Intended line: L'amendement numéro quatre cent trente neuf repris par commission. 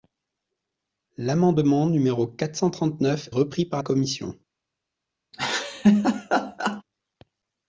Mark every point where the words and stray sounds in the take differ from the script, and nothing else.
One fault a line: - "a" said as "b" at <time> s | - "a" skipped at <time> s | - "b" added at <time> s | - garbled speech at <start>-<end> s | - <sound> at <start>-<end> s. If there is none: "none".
- laugh at 5.3-6.8 s